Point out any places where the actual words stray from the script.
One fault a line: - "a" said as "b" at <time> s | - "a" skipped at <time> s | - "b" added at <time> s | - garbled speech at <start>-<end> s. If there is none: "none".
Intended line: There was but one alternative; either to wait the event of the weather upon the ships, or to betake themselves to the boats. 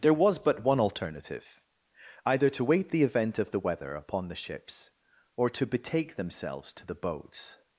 none